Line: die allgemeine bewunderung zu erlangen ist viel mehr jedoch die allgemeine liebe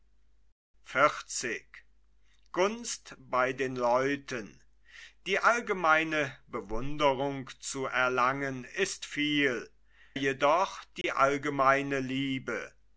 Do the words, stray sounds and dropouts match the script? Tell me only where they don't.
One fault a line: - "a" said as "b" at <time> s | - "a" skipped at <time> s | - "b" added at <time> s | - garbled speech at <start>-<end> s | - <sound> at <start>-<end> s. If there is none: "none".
- "mehr" skipped at 9.7 s
- dropout at 11.0-11.0 s